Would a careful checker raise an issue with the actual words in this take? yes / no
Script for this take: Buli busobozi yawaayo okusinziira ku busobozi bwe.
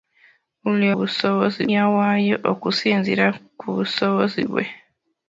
no